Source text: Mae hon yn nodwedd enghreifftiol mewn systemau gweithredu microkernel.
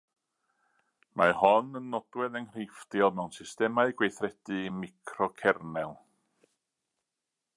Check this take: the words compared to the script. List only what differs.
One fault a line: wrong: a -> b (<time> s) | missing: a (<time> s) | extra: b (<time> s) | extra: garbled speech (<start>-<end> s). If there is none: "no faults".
no faults